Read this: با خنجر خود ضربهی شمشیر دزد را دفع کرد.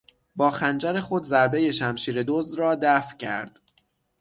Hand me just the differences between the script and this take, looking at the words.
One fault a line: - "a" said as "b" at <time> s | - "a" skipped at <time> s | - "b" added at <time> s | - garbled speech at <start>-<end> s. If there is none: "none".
none